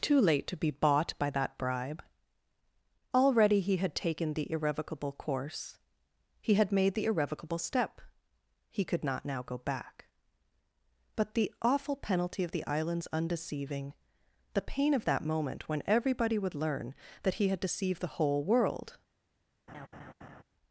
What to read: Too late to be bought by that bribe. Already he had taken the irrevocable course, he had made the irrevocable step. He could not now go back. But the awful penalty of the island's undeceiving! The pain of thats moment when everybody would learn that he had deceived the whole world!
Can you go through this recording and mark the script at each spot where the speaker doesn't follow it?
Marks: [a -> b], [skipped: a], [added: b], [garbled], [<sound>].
Too late to be bought by that bribe. Already he had taken the irrevocable course, he had made the irrevocable step. He could not now go back. But the awful penalty of the island's undeceiving! The pain of [thats -> that] moment when everybody would learn that he had deceived the whole world! [laugh]